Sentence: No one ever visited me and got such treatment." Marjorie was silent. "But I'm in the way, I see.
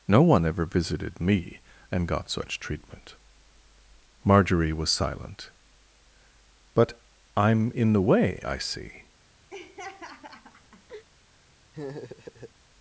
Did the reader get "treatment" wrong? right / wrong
right